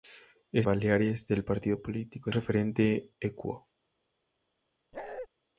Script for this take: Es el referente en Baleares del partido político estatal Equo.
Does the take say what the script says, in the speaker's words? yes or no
no